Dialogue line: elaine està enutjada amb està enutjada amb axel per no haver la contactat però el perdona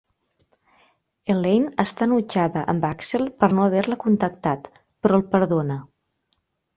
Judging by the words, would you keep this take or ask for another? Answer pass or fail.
fail